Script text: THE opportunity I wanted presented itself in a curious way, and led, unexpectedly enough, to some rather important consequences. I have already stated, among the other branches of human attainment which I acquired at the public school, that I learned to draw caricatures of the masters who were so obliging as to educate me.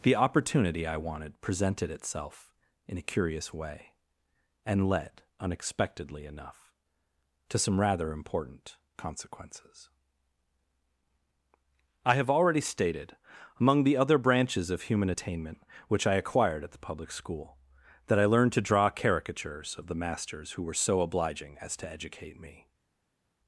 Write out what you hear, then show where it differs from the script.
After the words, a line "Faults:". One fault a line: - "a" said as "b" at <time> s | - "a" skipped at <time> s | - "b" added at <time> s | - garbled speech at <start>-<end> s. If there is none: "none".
THE opportunity I wanted presented itself in a curious way, and led, unexpectedly enough, to some rather important consequences. I have already stated, among the other branches of human attainment which I acquired at the public school, that I learned to draw caricatures of the masters who were so obliging as to educate me.
Faults:
none